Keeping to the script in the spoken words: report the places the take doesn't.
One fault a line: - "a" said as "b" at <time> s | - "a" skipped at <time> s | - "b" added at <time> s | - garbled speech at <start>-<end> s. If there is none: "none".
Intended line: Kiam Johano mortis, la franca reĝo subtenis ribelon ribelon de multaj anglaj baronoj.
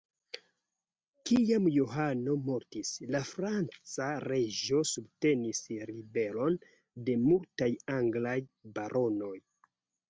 - "ribelon" skipped at 6.6 s